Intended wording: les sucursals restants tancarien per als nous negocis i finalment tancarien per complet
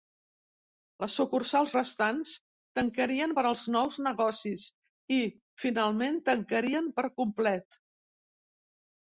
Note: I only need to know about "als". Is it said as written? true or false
true